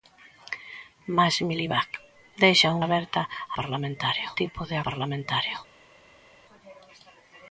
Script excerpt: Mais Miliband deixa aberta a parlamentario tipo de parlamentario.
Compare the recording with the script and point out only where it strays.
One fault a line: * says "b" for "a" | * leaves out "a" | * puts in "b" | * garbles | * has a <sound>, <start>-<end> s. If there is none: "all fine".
all fine